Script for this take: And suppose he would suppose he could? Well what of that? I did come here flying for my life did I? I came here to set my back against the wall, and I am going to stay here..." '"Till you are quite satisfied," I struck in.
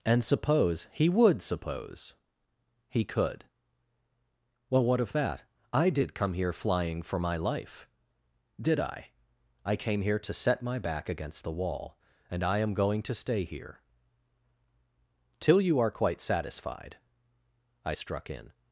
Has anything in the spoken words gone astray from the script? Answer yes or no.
no